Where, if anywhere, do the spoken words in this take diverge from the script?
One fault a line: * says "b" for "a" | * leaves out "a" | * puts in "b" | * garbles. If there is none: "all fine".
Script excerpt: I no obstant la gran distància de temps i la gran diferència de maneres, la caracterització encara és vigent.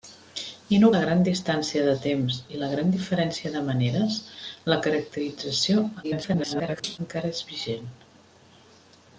* leaves out "obstant"
* garbles